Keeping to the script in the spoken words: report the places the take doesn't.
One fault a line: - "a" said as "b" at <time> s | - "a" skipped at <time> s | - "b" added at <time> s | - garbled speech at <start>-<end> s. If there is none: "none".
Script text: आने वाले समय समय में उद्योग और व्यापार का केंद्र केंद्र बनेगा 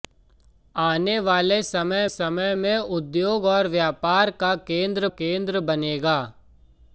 none